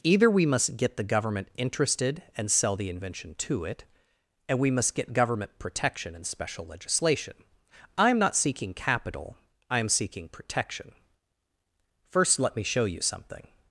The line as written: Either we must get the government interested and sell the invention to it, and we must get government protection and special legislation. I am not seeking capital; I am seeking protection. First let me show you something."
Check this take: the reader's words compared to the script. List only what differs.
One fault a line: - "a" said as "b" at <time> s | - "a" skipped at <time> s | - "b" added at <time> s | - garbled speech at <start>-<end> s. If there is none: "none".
none